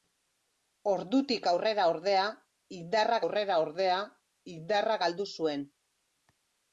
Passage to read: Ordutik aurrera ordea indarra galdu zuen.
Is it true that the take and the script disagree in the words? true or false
true